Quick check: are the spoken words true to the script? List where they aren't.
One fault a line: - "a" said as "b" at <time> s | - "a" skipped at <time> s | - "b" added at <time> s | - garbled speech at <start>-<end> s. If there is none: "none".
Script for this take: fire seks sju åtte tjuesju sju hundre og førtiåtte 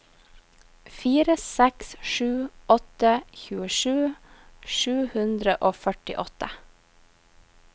none